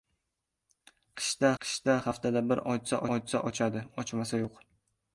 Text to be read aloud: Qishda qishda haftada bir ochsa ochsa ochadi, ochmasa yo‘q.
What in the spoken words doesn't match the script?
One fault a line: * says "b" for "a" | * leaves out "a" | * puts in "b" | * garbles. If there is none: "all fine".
all fine